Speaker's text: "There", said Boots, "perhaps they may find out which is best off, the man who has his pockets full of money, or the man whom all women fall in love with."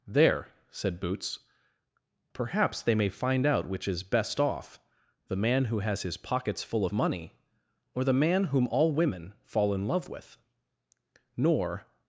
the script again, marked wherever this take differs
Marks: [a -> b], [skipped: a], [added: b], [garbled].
"There", said Boots, "perhaps they may find out which is best off, the man who has his pockets full of money, or the man whom all women fall in love with." [added: Nor]